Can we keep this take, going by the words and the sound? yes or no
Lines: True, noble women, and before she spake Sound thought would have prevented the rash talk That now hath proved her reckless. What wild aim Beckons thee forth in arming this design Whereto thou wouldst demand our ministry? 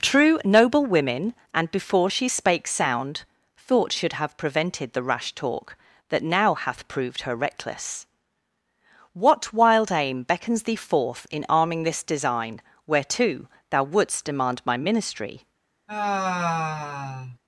no